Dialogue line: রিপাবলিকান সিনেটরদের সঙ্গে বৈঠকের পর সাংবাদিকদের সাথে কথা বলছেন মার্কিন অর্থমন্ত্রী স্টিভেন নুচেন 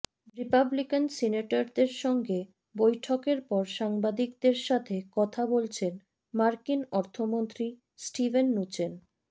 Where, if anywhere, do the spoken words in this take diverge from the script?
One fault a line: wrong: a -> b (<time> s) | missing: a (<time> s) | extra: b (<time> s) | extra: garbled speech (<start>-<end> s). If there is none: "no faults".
no faults